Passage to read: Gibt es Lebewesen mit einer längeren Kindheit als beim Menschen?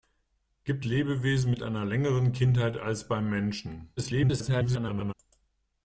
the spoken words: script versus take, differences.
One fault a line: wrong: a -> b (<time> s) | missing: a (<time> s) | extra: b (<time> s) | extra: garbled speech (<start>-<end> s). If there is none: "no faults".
missing: es (0.8 s)
extra: garbled speech (4.0-5.1 s)